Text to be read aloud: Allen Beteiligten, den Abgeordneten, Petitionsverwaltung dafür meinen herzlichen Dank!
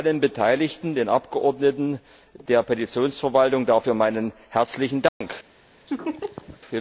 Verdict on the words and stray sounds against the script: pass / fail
fail